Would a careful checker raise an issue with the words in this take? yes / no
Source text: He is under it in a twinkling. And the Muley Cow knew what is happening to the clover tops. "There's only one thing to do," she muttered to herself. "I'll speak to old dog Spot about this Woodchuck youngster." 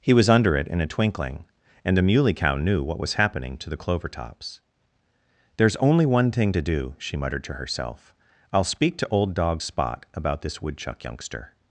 yes